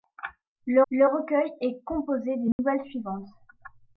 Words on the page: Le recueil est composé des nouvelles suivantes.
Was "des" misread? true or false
false